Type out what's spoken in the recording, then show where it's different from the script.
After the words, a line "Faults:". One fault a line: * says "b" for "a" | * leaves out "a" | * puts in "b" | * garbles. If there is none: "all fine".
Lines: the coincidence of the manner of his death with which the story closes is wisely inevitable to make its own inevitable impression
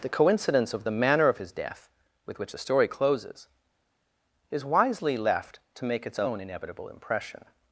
the coincidence of the manner of his death with which the story closes is wisely left to make its own inevitable impression
Faults:
* says "left" for "inevitable"